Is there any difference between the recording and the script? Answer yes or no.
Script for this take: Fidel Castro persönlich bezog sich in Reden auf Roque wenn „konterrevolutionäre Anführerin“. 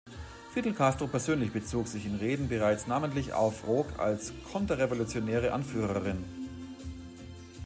yes